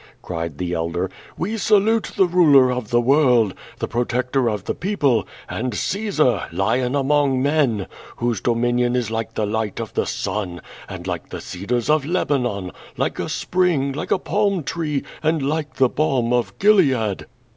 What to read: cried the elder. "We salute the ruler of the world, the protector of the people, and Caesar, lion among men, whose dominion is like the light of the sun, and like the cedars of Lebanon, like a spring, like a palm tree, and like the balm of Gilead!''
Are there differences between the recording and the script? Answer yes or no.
no